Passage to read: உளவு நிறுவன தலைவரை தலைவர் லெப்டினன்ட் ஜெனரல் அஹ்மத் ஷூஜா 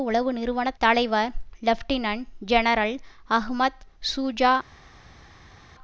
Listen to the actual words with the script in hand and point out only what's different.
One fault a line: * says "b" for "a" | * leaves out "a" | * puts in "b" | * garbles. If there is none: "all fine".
* leaves out "தலைவரை"